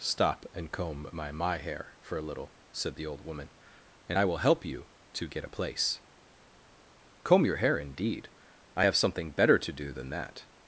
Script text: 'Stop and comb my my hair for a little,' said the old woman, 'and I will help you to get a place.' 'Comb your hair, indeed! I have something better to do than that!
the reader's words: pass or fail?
pass